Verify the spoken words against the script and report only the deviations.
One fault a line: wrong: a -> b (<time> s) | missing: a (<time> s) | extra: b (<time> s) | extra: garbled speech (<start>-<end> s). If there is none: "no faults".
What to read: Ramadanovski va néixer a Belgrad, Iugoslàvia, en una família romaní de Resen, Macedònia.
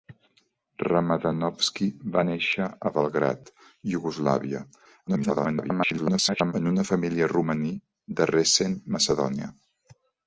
extra: garbled speech (5.1-6.5 s)